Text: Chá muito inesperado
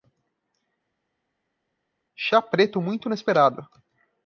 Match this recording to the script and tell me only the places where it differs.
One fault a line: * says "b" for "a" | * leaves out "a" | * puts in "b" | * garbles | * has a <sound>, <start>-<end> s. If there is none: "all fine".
* puts in "preto"